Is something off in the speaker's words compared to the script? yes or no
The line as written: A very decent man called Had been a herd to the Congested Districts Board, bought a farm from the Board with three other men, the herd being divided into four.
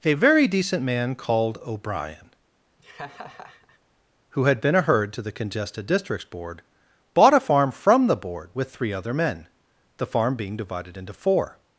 yes